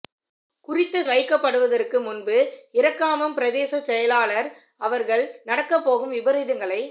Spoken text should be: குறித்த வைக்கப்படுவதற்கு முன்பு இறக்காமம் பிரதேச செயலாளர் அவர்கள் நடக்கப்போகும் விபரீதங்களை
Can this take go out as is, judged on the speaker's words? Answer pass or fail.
pass